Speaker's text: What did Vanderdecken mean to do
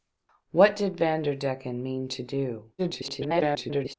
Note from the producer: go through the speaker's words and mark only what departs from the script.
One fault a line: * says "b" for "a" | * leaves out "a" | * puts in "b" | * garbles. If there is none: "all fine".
* garbles